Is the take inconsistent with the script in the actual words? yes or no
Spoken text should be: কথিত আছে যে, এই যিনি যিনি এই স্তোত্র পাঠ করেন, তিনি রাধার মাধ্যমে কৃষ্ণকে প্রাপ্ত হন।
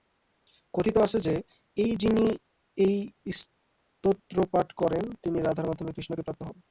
yes